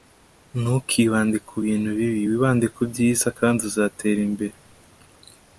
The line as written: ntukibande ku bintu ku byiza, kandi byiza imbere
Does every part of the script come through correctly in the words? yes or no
no